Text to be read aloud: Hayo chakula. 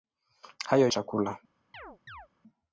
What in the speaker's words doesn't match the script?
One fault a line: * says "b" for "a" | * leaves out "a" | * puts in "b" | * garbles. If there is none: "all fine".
all fine